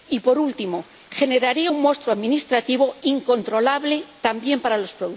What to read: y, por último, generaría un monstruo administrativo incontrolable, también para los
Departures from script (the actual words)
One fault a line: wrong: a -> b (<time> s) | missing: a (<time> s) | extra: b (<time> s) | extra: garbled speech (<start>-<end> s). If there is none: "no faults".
no faults